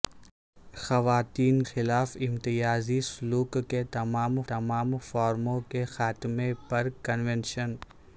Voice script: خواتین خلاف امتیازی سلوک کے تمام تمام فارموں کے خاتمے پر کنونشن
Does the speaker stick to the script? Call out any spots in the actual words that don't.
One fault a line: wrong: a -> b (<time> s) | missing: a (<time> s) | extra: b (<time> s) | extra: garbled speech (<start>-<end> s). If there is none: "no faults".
no faults